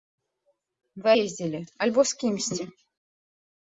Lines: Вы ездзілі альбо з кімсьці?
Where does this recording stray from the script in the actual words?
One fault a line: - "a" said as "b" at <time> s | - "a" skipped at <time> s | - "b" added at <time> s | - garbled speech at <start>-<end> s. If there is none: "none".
none